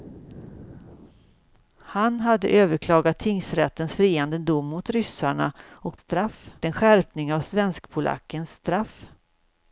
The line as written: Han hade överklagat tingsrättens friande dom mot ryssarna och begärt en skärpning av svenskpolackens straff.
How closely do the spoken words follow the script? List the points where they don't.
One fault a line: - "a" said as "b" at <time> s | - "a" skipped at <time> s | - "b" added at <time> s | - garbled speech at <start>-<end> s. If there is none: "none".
- "begärt" said as "straff" at 6.0 s